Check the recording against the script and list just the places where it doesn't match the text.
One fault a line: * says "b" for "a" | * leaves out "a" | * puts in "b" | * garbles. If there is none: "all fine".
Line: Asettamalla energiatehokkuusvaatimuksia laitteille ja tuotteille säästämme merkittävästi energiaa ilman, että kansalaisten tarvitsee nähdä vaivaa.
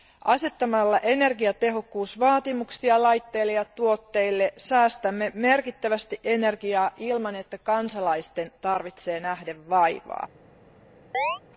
all fine